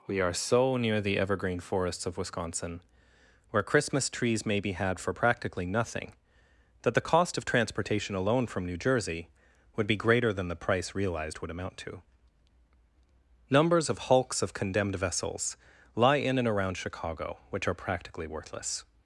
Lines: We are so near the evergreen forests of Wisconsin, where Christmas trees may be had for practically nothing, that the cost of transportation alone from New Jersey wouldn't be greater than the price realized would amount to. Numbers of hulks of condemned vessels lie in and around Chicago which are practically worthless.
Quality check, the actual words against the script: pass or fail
fail